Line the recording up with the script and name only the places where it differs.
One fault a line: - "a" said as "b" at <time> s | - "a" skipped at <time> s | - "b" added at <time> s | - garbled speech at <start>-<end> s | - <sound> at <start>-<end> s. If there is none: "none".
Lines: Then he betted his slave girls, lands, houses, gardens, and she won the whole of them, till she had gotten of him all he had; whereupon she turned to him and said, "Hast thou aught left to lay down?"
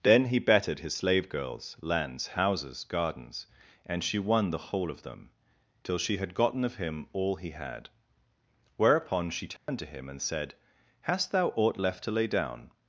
- dropout at 9.6-9.7 s